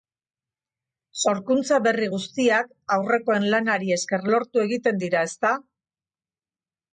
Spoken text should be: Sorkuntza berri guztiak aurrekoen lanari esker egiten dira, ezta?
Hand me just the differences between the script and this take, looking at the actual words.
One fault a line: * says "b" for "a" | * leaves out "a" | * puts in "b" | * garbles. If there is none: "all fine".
* puts in "lortu"